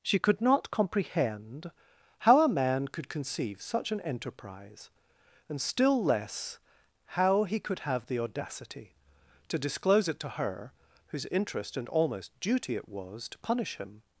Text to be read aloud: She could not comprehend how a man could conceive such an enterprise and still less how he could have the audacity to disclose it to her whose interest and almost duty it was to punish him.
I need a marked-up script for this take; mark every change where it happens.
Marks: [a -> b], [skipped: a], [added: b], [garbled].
She could not comprehend how a man could conceive such an enterprise and still less how he could have the audacity to disclose it to her whose interest and almost duty it was to punish him.